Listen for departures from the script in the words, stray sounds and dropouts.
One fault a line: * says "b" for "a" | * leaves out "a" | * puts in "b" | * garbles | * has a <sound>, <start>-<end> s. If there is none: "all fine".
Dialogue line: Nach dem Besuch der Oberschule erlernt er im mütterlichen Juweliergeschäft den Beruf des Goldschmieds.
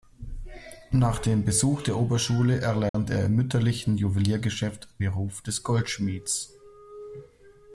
* has a dropout, 2.9-2.9 s
* leaves out "den"